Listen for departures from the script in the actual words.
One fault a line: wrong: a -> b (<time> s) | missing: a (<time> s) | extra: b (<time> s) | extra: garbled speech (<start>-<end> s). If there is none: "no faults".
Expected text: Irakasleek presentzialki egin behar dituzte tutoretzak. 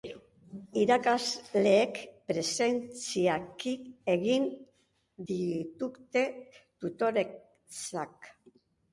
missing: behar (4.4 s)